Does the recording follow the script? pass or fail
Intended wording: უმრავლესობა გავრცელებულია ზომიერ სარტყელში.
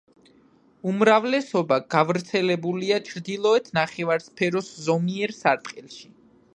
fail